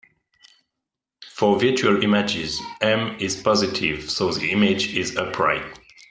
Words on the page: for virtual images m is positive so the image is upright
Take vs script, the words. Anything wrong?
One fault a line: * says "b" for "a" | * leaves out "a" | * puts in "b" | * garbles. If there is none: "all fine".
all fine